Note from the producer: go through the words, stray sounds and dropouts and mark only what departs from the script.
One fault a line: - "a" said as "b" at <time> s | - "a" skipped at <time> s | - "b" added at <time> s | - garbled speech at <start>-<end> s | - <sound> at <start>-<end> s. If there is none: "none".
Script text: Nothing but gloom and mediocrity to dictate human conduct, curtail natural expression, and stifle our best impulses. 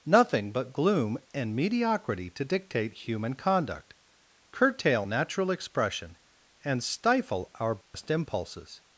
- dropout at 7.8-7.9 s